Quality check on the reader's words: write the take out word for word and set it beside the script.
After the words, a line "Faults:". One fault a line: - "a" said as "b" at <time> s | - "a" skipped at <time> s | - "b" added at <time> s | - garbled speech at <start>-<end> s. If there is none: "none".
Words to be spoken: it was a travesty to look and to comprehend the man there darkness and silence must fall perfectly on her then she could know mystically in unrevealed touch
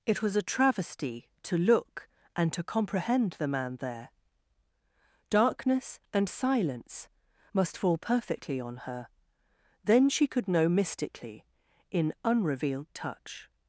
it was a travesty to look and to comprehend the man there darkness and silence must fall perfectly on her then she could know mystically in unrevealed touch
Faults:
none